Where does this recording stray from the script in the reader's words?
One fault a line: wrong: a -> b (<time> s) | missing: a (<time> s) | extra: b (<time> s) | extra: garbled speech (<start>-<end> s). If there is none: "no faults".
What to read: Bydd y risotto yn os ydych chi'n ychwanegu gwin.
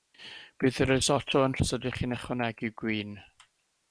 no faults